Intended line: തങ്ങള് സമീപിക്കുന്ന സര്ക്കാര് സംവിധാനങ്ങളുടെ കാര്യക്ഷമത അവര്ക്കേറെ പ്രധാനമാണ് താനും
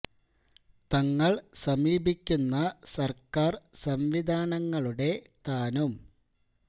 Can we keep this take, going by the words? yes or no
no